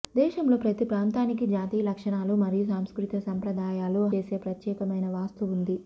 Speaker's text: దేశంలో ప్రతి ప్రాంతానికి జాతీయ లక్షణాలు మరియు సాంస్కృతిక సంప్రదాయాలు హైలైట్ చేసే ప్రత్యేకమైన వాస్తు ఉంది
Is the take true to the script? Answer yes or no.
no